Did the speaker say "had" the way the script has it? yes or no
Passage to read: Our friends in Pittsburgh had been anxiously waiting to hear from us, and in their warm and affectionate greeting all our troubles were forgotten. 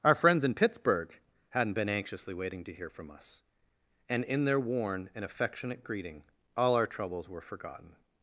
no